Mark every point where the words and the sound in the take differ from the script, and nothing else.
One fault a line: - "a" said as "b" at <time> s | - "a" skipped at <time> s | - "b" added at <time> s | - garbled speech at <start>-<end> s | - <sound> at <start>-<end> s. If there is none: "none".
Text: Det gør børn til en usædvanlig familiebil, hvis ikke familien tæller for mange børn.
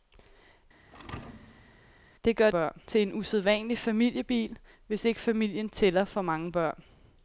- thud at 0.9-2.0 s